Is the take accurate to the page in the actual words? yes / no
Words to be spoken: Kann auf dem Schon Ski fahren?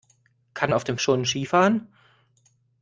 yes